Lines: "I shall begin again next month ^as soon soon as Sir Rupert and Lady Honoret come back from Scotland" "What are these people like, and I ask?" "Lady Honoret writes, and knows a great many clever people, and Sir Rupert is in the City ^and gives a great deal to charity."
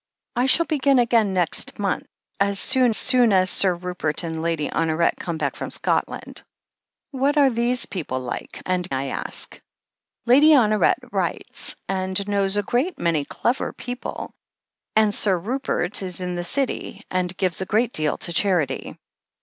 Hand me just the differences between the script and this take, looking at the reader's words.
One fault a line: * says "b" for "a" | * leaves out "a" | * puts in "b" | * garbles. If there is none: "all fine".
all fine